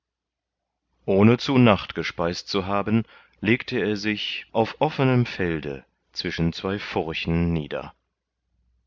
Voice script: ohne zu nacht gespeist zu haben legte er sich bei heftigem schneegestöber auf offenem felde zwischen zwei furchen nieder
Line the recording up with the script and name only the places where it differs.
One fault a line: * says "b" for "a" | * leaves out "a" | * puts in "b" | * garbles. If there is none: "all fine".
* leaves out "bei heftigem schneegestöber"